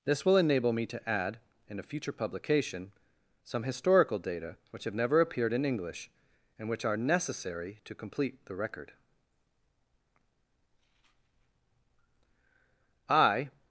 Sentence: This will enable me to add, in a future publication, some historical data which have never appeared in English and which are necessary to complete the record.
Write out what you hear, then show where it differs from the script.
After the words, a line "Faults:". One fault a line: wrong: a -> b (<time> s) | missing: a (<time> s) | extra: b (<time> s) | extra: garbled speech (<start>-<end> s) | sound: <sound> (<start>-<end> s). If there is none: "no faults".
This will enable me to add, in a future publication, some historical data which have never appeared in English and which are necessary to complete the record. I
Faults:
extra: I (13.1 s)